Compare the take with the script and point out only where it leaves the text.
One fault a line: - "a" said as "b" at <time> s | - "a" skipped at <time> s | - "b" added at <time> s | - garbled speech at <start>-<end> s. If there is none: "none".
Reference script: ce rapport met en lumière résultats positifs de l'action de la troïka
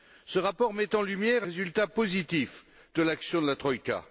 none